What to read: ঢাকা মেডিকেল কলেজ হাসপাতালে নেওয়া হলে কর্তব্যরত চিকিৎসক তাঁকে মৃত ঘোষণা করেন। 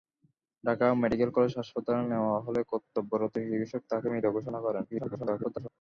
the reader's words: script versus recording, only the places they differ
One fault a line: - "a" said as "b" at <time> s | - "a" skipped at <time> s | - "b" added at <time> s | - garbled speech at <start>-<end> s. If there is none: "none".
- garbled speech at 4.9-5.7 s